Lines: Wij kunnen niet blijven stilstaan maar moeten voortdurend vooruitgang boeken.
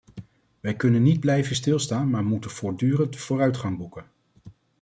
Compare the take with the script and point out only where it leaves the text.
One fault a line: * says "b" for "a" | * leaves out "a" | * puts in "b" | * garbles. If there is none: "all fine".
all fine